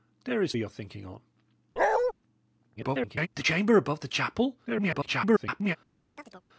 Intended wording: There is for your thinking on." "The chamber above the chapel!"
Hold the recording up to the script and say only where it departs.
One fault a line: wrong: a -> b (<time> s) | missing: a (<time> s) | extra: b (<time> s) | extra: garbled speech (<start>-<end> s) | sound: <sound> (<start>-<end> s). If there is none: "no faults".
missing: for (0.5 s)
sound: bark (1.8-2.1 s)
extra: garbled speech (2.8-3.3 s)
extra: garbled speech (4.7-5.8 s)
sound: chirp (6.2-6.4 s)